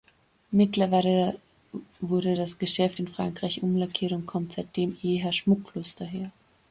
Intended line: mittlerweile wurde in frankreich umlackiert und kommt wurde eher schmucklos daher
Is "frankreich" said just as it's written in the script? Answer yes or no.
yes